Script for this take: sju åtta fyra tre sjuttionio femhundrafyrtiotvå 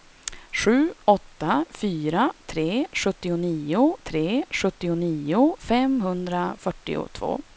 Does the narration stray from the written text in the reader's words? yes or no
yes